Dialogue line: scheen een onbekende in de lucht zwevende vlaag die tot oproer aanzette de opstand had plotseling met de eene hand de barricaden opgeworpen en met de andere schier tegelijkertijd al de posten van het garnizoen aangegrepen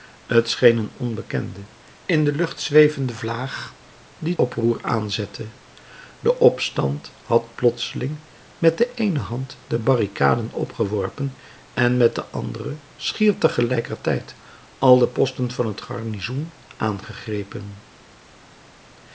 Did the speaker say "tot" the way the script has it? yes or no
no